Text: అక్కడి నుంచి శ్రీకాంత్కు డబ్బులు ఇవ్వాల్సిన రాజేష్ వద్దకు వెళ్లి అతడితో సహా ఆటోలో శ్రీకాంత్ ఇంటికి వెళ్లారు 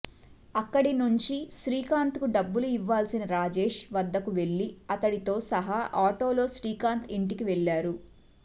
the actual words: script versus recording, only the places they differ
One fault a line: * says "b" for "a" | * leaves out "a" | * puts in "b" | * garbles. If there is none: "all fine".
all fine